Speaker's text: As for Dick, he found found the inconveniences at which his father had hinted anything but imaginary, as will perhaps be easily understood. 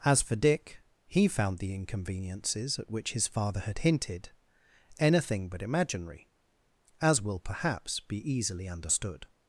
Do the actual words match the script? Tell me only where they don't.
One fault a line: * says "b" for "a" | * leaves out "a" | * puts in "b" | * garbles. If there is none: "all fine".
* leaves out "found"